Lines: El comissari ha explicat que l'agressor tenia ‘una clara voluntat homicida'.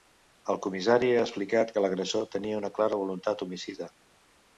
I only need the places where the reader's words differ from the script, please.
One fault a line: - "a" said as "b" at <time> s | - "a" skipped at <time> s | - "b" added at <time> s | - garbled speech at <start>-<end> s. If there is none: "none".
none